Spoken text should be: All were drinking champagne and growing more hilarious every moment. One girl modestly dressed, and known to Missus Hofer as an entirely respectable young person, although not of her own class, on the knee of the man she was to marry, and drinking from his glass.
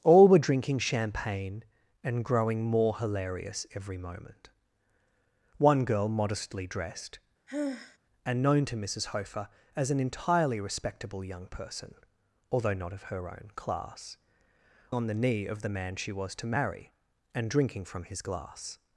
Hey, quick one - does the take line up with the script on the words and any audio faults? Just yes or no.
no